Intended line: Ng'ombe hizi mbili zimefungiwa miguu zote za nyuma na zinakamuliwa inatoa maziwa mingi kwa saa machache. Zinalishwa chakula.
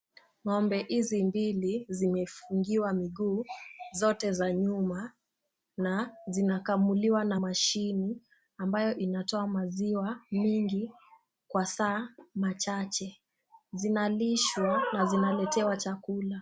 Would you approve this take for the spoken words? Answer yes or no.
no